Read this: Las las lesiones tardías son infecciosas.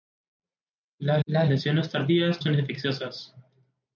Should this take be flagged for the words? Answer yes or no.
no